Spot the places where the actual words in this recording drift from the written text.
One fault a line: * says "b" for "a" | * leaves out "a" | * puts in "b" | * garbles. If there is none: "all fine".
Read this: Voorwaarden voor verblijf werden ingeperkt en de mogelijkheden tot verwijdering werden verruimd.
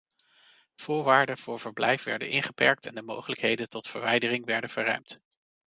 all fine